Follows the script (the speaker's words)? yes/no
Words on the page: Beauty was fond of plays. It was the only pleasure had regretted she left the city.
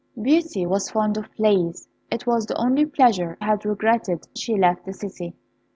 yes